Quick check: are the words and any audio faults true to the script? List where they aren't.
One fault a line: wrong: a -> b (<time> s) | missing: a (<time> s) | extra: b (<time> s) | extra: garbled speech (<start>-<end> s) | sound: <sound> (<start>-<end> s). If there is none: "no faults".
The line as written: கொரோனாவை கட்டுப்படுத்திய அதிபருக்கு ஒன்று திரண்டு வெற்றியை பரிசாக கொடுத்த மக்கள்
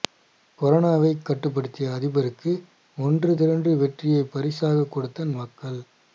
no faults